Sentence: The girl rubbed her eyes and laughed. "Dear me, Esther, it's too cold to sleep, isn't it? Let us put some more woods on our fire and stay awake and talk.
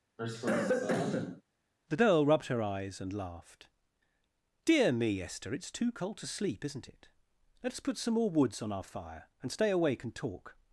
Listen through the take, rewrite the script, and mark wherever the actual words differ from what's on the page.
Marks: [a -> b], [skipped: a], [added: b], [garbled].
The girl rubbed her eyes and laughed. "Dear me, Esther, it's too cold to sleep, isn't it? Let us put some more woods on our fire and stay awake and talk.